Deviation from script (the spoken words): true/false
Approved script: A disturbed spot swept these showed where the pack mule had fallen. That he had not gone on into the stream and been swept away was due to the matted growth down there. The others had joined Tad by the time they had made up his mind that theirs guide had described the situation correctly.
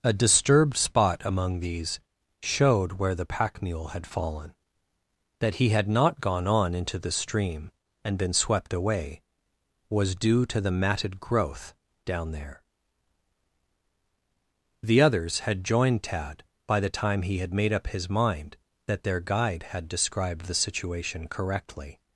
true